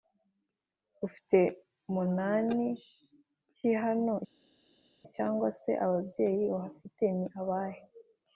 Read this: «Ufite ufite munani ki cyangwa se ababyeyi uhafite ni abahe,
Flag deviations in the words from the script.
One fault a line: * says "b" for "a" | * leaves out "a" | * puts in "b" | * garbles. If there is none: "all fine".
* leaves out "ufite"
* puts in "hano"